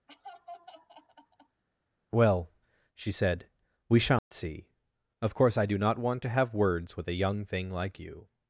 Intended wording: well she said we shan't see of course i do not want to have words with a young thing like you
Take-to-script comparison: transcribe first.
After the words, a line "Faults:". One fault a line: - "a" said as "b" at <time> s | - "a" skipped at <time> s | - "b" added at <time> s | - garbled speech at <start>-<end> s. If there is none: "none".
well she said we shan't see of course i do not want to have words with a young thing like you
Faults:
none